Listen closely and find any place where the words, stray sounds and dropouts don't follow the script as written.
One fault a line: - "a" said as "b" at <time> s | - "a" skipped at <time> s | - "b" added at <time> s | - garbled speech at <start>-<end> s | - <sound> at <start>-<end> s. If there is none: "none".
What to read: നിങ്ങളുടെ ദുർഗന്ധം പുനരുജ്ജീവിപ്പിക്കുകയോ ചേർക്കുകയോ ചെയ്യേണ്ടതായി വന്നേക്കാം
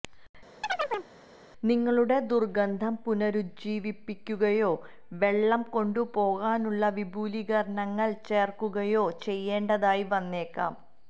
- chirp at 0.6-1.1 s
- "വെള്ളം കൊണ്ടുപോകാനുള്ള വിപുലീകരണങ്ങൾ" added at 5.2 s